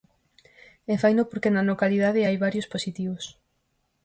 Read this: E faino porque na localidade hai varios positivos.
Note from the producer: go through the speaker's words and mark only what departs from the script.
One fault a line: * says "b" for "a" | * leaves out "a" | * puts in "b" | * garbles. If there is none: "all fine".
all fine